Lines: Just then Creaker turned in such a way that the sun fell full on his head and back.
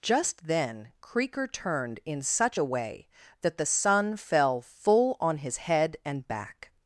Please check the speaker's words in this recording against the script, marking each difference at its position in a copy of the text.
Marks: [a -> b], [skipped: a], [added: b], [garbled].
Just then Creaker turned in such a way that the sun fell full on his head and back.